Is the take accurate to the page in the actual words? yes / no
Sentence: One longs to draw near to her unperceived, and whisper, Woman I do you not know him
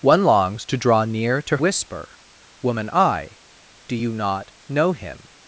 no